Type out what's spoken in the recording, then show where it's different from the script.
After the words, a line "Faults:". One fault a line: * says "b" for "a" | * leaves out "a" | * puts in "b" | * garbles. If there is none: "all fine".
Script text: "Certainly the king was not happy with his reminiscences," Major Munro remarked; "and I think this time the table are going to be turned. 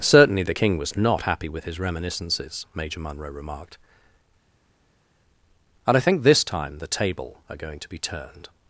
"Certainly the king was not happy with his reminiscences," Major Munro remarked; "and I think this time the table are going to be turned.
Faults:
all fine